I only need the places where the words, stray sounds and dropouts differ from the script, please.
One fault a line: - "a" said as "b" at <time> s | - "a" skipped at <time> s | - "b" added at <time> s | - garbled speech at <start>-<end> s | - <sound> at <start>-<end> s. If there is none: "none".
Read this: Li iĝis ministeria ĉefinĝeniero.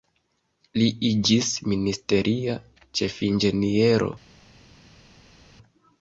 none